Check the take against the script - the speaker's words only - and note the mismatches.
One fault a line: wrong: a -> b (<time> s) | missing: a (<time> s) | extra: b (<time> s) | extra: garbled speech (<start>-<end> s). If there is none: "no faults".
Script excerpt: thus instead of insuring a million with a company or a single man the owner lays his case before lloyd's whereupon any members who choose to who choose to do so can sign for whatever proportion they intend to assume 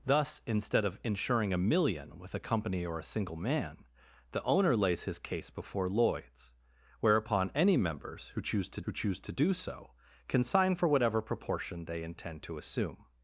no faults